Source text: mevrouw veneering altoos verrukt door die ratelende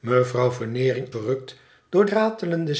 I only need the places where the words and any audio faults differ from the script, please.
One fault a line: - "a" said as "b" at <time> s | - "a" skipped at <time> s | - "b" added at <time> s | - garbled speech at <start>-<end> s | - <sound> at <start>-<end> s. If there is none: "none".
- "altoos" skipped at 1.1 s
- "die" skipped at 2.1 s